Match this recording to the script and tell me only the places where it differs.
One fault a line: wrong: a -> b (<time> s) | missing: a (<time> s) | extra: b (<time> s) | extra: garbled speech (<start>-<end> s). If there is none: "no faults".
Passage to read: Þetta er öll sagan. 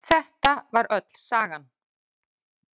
wrong: er -> var (0.7 s)